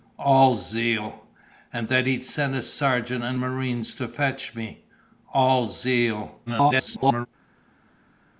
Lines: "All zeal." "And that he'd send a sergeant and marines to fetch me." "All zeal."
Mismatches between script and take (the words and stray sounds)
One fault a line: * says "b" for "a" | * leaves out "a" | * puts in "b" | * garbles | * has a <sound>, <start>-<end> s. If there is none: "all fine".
* garbles